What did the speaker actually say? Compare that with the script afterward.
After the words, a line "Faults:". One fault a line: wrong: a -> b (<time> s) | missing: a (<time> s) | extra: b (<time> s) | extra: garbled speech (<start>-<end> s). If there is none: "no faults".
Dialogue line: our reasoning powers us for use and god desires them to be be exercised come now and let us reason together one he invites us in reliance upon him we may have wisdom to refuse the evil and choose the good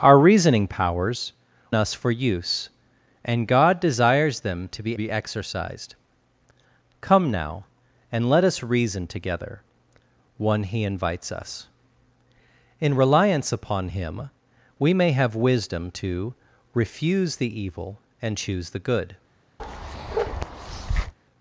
our reasoning powers us for use and god desires them to be be exercised come now and let us reason together one he invites us in reliance upon him we may have wisdom to refuse the evil and choose the good
Faults:
no faults